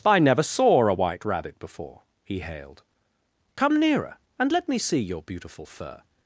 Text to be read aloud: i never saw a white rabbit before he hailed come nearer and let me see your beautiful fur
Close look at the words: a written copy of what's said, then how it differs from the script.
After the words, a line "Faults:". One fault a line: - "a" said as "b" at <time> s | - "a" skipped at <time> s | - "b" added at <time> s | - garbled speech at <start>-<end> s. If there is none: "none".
i never saw a white rabbit before he hailed come nearer and let me see your beautiful fur
Faults:
none